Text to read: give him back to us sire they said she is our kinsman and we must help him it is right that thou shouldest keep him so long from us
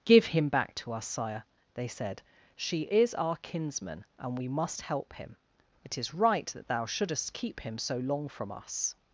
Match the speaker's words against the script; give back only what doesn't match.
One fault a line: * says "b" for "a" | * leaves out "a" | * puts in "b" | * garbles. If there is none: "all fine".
all fine